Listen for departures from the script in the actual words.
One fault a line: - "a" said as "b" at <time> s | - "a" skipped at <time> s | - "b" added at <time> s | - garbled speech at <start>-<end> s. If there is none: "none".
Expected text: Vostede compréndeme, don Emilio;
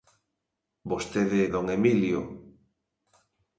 - "compréndeme" skipped at 1.4 s